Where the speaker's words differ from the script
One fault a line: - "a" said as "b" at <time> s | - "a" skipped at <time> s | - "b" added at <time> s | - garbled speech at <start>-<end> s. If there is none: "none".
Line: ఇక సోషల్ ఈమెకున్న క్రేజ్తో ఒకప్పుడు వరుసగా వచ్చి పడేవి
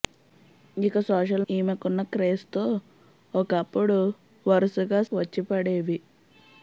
none